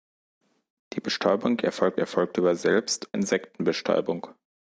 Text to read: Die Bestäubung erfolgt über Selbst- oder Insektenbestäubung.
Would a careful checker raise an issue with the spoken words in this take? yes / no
yes